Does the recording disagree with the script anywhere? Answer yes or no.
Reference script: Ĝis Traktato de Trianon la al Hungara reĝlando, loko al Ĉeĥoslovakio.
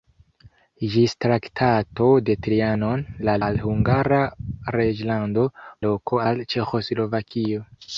no